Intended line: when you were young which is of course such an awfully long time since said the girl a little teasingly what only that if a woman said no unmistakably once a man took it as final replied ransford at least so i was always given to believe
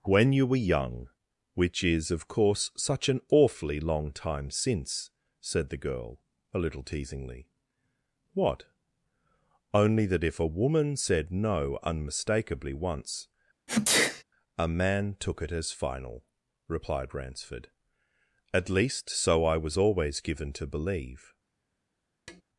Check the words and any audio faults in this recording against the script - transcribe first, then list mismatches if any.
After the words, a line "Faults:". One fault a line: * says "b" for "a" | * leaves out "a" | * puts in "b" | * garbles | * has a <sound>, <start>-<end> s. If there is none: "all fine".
when you were young which is of course such an awfully long time since said the girl a little teasingly what only that if a woman said no unmistakably once a man took it as final replied ransford at least so i was always given to believe
Faults:
* has a sneeze, 13.7-14.2 s
* has a tap, 22.3-22.4 s